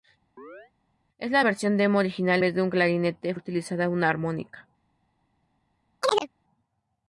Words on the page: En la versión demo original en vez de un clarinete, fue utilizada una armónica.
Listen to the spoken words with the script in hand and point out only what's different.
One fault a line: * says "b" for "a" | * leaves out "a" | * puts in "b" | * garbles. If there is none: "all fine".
* leaves out "en"
* leaves out "fue"